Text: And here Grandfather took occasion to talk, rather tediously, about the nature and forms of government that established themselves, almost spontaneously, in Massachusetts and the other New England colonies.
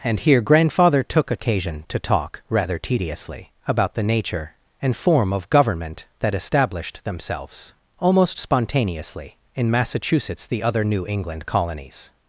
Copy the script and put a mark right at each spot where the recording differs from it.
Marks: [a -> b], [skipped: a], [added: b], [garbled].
And here Grandfather took occasion to talk, rather tediously, about the nature and [forms -> form] of government that established themselves, almost spontaneously, in Massachusetts [skipped: and] the other New England colonies.